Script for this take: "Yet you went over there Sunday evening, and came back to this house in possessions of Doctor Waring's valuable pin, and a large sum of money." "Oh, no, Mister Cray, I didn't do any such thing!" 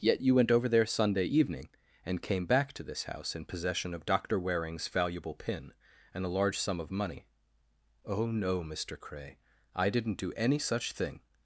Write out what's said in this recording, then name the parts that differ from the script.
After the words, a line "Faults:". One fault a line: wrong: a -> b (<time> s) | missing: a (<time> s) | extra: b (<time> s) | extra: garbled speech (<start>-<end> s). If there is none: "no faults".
"Yet you went over there Sunday evening, and came back to this house in possession of Doctor Waring's valuable pin, and a large sum of money." "Oh, no, Mister Cray, I didn't do any such thing!"
Faults:
wrong: possessions -> possession (3.5 s)